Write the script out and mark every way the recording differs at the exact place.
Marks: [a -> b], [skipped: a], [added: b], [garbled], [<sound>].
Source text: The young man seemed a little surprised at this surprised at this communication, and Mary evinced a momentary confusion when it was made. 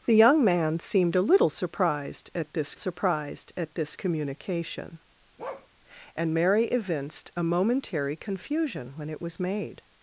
The young man seemed a little surprised at this surprised at this communication, [bark] and Mary evinced a momentary confusion when it was made.